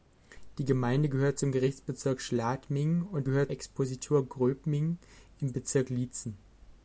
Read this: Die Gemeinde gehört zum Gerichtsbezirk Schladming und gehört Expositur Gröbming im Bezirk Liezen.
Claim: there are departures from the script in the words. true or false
false